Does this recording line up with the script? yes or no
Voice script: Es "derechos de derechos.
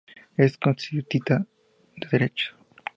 no